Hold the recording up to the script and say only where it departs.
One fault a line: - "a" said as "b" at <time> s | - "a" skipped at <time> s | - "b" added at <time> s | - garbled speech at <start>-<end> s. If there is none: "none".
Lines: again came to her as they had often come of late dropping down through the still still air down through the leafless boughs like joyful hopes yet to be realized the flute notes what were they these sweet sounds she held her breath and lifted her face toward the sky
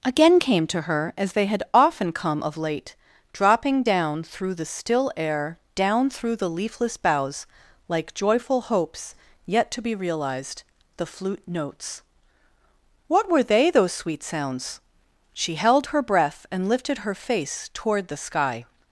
- "still" skipped at 5.1 s
- "these" said as "those" at 13.7 s